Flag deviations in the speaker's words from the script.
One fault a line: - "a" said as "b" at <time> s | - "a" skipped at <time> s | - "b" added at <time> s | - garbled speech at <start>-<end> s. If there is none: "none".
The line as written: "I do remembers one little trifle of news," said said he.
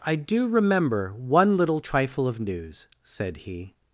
- "remembers" said as "remember" at 0.5 s
- "said" skipped at 3.4 s